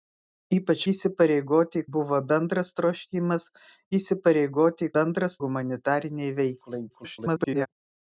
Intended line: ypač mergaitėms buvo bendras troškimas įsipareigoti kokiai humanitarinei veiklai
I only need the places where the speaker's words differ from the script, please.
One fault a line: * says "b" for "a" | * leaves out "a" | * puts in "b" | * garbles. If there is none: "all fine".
* says "įsipareigoti" for "mergaitėms"
* says "bendras" for "kokiai"
* garbles